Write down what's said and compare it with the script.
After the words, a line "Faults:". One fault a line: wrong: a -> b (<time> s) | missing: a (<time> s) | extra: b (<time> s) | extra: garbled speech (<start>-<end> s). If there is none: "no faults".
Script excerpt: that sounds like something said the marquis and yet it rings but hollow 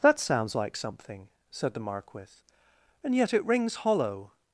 that sounds like something said the marquis and yet it rings hollow
Faults:
missing: but (3.8 s)